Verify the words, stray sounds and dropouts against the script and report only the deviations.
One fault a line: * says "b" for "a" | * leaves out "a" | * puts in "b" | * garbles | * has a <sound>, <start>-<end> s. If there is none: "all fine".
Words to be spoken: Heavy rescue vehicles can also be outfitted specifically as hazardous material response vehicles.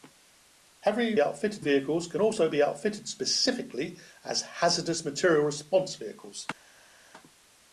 * says "outfitted" for "rescue"